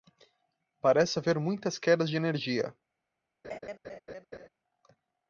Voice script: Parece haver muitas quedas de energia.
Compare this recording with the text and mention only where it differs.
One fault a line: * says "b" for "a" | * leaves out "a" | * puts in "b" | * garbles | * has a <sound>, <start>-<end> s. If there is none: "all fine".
* has a laugh, 3.4-4.5 s